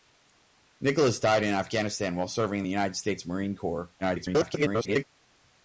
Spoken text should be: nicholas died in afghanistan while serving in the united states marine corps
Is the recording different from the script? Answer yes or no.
yes